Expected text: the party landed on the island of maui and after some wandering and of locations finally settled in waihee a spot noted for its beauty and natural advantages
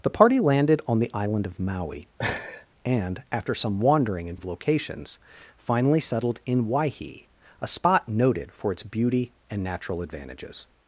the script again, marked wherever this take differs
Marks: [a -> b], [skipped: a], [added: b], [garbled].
the party landed on the island of maui and after some wandering and of locations finally settled in waihee a spot noted for its beauty and natural advantages